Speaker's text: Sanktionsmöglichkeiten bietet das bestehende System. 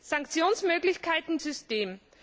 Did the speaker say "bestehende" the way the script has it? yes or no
no